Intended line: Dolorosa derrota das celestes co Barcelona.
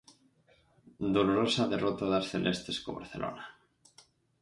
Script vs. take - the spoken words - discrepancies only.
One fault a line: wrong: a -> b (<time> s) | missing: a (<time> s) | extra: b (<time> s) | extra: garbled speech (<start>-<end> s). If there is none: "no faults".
no faults